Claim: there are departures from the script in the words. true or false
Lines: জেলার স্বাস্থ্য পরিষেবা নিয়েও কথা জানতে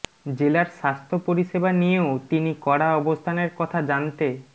true